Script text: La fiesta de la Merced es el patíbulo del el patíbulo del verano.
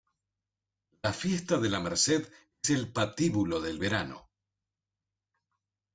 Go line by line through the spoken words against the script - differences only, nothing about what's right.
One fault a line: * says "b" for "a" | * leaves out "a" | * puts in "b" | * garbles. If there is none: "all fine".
* leaves out "el patíbulo del"